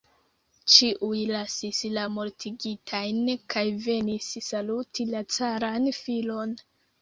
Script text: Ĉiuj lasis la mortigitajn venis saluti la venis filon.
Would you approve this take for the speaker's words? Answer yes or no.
no